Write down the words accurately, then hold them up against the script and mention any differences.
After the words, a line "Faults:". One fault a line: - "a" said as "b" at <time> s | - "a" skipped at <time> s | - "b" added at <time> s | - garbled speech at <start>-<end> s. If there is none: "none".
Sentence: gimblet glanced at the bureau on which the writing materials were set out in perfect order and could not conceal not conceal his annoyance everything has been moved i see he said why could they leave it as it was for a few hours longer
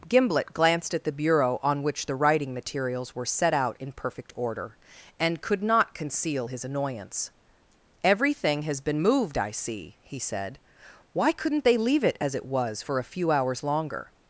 gimblet glanced at the bureau on which the writing materials were set out in perfect order and could not conceal his annoyance everything has been moved i see he said why couldn't they leave it as it was for a few hours longer
Faults:
- "not conceal" skipped at 6.5 s
- "could" said as "couldn't" at 11.3 s